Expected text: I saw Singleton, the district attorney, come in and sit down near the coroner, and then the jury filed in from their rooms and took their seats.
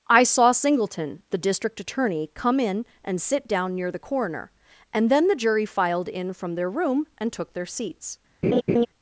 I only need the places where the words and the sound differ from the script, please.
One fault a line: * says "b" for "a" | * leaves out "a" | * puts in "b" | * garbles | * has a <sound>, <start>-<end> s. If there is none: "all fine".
* says "room" for "rooms"
* has a laugh, 8.4-8.9 s